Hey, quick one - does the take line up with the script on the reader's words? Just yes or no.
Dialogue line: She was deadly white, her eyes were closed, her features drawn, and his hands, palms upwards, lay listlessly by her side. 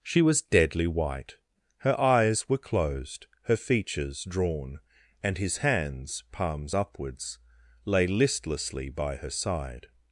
yes